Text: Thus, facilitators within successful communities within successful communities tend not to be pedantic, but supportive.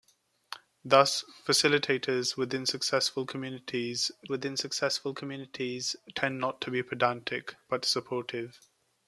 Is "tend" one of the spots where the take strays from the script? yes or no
no